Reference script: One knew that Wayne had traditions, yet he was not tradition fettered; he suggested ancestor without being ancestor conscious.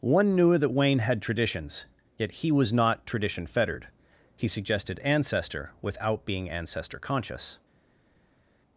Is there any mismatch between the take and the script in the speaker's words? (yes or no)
no